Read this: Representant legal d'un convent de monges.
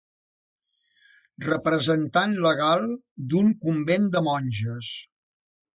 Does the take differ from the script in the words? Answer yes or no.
no